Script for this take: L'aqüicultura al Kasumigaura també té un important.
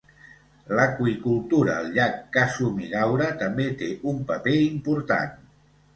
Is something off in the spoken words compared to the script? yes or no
yes